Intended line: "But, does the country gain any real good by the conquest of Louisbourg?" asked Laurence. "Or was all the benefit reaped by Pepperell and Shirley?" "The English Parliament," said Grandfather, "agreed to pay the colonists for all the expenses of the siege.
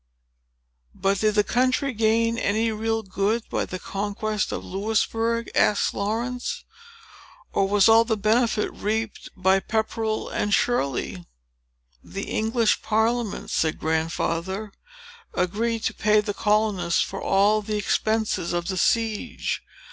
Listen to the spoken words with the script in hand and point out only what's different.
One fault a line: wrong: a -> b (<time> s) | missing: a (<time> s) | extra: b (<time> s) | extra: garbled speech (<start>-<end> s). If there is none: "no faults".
wrong: does -> did (1.2 s)